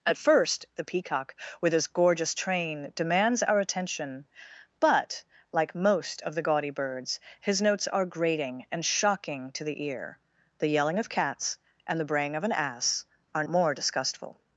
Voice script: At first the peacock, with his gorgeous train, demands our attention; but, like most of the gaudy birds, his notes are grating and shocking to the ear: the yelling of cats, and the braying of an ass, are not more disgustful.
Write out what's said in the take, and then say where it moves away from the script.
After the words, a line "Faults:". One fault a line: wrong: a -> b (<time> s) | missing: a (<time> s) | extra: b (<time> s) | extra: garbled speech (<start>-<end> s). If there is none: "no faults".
At first the peacock, with his gorgeous train, demands our attention; but, like most of the gaudy birds, his notes are grating and shocking to the ear: the yelling of cats, and the braying of an ass, are more disgustful.
Faults:
missing: not (13.4 s)